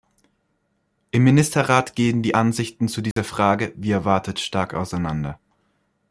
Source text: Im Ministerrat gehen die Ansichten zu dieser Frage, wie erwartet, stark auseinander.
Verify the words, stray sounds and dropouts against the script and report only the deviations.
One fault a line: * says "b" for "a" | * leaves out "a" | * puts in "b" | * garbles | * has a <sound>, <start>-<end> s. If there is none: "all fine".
* has a dropout, 3.1-3.2 s